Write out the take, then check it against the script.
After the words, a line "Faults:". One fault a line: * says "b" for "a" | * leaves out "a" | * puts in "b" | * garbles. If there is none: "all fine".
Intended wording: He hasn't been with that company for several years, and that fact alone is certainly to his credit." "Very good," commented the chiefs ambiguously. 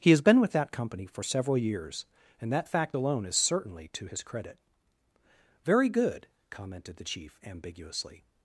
He has been with that company for several years, and that fact alone is certainly to his credit." "Very good," commented the chief ambiguously.
Faults:
* says "has" for "hasn't"
* says "chief" for "chiefs"